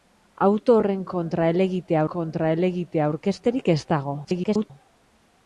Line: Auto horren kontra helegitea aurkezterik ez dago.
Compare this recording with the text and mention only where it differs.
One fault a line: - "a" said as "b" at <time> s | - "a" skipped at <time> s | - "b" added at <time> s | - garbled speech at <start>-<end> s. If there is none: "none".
- "kontra helegitea" added at 2.1 s
- garbled speech at 4.2-4.7 s